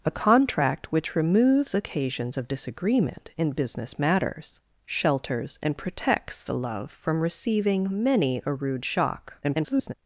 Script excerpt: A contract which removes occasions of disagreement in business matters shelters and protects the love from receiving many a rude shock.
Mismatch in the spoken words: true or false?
true